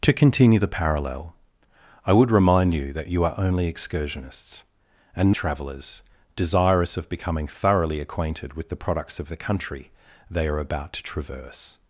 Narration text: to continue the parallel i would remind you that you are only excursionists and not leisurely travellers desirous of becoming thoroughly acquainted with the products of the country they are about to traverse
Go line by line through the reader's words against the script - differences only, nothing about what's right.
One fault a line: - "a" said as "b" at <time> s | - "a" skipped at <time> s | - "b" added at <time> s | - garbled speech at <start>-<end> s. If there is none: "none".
- "not leisurely" skipped at 5.3 s